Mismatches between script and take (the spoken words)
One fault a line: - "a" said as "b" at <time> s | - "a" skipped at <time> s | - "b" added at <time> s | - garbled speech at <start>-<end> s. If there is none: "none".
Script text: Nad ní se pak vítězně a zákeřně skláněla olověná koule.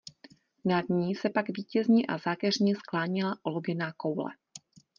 none